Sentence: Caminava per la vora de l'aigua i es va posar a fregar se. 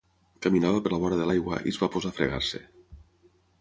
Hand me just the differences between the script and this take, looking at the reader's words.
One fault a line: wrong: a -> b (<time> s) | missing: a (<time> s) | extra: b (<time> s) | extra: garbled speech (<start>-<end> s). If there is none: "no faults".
no faults